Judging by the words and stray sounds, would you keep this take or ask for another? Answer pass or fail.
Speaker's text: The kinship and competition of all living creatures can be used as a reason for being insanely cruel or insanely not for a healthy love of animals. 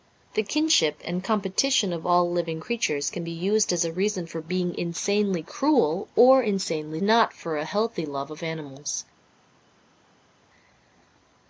pass